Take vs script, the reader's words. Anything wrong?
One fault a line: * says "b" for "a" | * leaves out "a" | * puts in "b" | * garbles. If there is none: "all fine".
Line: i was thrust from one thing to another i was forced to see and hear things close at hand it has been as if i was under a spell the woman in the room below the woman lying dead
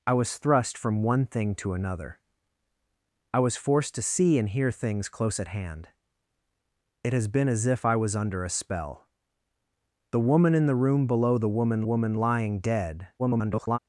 * puts in "woman"
* garbles